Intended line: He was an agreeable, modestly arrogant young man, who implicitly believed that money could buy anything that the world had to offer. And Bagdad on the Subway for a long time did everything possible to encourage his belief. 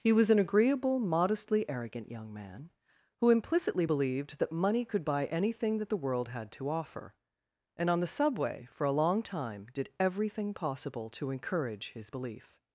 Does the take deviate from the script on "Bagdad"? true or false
true